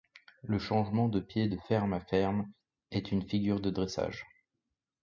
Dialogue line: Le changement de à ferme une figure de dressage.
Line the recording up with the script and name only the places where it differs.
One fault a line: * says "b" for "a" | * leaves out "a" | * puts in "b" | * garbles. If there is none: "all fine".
* puts in "pied de ferme"
* puts in "est"